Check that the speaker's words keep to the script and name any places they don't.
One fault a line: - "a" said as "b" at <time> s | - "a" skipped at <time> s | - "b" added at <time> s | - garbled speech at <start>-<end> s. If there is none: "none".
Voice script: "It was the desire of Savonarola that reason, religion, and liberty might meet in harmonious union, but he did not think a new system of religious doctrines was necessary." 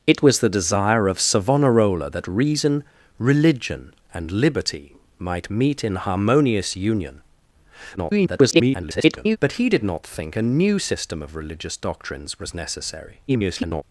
- garbled speech at 8.0-9.4 s
- garbled speech at 13.3-13.8 s